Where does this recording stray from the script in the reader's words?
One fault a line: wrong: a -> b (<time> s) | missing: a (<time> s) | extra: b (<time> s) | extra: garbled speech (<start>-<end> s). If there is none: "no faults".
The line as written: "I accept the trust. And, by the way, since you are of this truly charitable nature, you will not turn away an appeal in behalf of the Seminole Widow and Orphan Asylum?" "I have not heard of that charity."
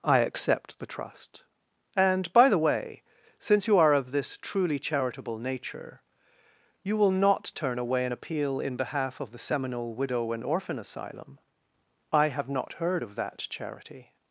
no faults